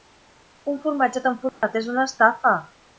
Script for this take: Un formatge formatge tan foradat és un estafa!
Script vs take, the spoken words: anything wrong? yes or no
yes